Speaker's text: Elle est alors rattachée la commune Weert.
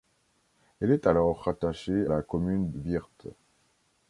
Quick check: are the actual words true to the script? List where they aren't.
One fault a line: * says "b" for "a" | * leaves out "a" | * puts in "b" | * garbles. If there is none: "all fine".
all fine